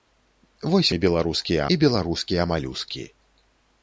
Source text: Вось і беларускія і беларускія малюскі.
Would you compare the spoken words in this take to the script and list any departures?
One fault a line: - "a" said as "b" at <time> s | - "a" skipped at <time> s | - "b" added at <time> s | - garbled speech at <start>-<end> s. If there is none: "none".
none